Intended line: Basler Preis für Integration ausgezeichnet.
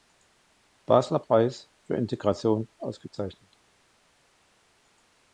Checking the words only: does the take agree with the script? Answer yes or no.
yes